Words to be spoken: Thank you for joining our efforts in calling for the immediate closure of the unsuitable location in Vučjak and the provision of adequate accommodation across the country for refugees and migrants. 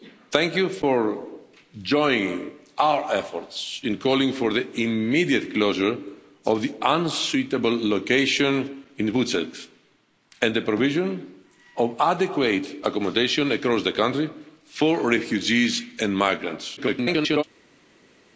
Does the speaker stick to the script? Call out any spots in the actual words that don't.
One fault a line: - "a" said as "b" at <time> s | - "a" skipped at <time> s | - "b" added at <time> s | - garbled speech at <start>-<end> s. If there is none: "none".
- garbled speech at 16.8-17.4 s